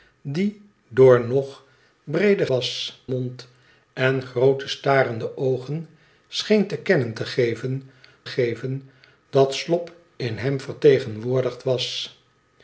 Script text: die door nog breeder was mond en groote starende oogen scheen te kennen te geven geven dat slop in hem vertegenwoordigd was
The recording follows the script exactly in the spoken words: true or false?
true